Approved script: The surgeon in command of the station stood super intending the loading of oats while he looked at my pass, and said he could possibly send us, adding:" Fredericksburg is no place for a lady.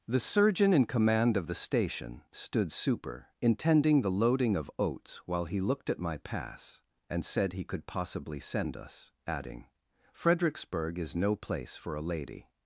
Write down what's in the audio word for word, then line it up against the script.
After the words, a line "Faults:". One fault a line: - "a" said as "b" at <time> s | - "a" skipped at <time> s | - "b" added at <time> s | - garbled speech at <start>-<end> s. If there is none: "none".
The surgeon in command of the station stood super intending the loading of oats while he looked at my pass, and said he could possibly send us, adding:" Fredericksburg is no place for a lady.
Faults:
none